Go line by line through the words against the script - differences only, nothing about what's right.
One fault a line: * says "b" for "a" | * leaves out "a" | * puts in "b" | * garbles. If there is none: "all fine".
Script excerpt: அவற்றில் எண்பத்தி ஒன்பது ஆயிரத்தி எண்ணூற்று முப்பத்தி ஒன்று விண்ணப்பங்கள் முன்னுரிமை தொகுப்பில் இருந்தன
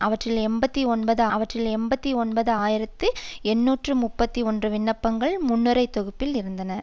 * puts in "அவற்றில் எண்பத்தி ஒன்பது"